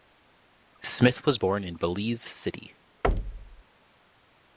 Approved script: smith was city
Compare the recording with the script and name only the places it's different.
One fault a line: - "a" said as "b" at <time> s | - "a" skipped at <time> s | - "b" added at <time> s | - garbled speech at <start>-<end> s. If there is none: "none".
- "born in belize" added at 1.3 s